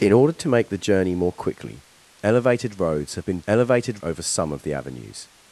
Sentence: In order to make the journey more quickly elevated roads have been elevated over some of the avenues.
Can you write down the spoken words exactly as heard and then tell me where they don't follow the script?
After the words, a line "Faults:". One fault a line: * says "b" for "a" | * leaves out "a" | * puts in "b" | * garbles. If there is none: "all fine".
In order to make the journey more quickly elevated roads have been elevated over some of the avenues.
Faults:
all fine